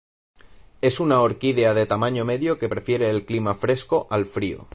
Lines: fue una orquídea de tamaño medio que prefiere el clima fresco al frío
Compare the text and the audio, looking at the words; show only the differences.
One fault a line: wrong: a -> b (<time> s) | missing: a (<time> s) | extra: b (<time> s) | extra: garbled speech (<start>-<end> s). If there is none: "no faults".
wrong: fue -> es (0.8 s)